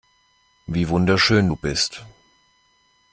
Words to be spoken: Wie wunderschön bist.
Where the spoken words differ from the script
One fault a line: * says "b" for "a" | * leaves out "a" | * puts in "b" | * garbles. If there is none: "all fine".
* puts in "du"